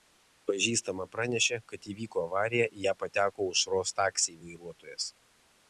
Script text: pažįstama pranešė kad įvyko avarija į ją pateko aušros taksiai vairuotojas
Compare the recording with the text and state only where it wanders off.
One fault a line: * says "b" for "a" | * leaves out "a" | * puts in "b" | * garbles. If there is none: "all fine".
all fine